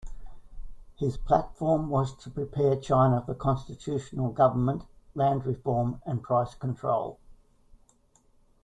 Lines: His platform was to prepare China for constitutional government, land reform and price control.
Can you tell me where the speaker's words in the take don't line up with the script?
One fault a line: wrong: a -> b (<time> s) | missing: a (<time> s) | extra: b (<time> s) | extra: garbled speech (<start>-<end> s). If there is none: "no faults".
no faults